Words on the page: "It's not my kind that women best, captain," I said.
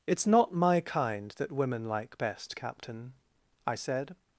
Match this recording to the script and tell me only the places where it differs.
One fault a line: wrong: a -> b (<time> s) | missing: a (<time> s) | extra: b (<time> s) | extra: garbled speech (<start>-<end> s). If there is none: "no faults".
extra: like (1.9 s)